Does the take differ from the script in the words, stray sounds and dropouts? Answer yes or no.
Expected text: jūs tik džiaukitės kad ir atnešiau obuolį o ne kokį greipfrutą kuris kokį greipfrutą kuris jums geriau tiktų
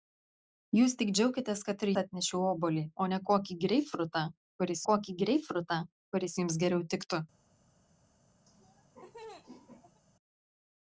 yes